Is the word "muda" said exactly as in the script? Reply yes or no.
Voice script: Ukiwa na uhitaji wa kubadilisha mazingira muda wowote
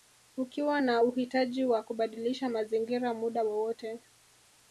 yes